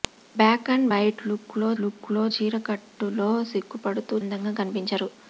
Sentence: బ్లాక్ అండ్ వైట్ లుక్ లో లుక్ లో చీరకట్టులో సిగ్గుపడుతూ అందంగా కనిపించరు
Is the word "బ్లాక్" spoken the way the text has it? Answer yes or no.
yes